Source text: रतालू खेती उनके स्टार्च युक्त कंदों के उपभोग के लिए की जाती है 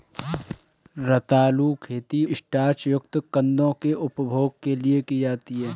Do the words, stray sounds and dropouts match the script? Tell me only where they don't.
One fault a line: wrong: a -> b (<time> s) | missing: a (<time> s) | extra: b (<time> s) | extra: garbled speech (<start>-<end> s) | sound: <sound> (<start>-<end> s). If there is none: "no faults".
missing: उनके (2.2 s)